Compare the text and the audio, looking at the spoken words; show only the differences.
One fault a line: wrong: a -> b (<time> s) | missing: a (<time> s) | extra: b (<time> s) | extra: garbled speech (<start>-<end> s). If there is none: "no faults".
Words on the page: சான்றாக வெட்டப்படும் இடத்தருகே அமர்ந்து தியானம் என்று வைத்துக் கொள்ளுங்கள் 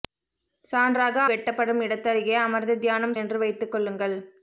no faults